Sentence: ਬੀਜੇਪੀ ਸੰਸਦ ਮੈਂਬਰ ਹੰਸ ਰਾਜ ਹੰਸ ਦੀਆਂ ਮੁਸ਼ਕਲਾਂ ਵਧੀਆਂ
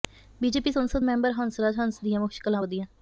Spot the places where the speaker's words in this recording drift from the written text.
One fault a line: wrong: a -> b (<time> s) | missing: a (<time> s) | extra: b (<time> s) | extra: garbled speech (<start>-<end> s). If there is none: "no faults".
no faults